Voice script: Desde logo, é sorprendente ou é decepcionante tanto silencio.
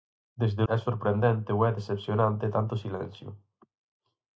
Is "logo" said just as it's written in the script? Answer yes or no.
no